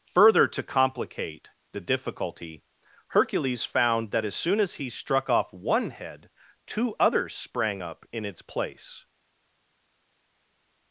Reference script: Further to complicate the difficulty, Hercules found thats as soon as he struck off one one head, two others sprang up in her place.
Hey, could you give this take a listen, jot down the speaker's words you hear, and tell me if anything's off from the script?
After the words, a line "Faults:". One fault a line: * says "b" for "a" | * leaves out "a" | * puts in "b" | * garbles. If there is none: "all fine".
Further to complicate the difficulty, Hercules found that as soon as he struck off one head, two others sprang up in its place.
Faults:
* says "that" for "thats"
* leaves out "one"
* says "its" for "her"